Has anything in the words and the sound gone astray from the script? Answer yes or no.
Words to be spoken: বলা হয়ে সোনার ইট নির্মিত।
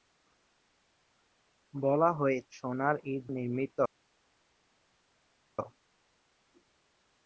no